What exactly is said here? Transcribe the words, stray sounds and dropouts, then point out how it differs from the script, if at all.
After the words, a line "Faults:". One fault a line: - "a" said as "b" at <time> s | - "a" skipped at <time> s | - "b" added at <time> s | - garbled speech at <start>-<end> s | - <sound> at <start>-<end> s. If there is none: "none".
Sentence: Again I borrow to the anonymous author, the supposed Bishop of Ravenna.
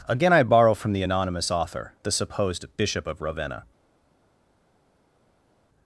Again I borrow from the anonymous author, the supposed Bishop of Ravenna.
Faults:
- "to" said as "from" at 0.7 s